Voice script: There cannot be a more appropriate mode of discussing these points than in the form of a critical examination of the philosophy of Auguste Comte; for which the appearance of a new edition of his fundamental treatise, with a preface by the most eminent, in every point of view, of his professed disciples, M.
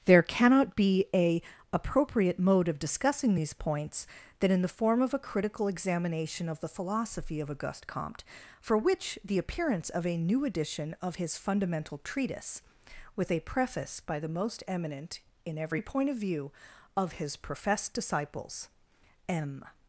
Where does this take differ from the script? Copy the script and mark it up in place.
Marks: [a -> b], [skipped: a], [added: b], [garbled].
There cannot be a [skipped: more] appropriate mode of discussing these points than in the form of a critical examination of the philosophy of Auguste Comte; for which the appearance of a new edition of his fundamental treatise, with a preface by the most eminent, in every point of view, of his professed disciples, M.